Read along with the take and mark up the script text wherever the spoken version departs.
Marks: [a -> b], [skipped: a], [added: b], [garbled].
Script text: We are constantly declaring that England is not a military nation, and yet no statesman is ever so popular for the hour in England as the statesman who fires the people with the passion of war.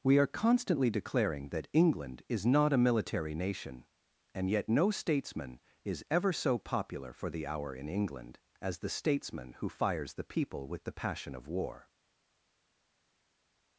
We are constantly declaring that England is not a military nation, and yet no statesman is ever so popular for the hour in England as the statesman who fires the people with the passion of war.